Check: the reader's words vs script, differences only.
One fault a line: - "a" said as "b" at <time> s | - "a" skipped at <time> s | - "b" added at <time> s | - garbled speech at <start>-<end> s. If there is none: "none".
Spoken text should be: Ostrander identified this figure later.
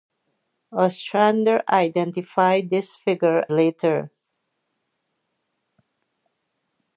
none